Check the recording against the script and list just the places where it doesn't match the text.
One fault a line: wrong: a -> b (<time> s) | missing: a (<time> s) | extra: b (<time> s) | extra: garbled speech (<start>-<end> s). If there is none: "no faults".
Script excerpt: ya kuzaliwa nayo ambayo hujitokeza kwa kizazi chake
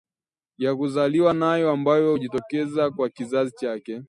no faults